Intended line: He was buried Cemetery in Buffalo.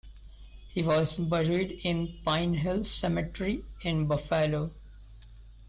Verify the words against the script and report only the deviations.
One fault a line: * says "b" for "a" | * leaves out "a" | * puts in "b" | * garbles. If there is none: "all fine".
* puts in "in Pine Hill"